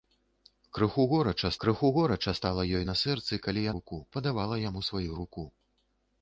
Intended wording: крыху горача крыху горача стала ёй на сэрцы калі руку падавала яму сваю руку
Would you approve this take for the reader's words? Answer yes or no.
yes